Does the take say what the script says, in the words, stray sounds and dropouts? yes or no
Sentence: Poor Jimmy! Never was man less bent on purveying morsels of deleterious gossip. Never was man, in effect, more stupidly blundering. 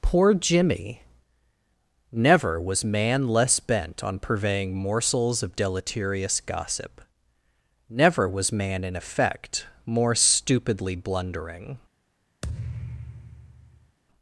no